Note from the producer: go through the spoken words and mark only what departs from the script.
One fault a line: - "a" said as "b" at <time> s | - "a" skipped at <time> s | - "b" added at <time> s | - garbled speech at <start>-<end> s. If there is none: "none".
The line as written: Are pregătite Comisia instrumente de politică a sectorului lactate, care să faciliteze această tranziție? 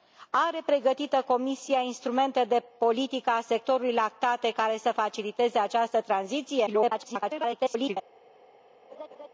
- garbled speech at 6.7-8.0 s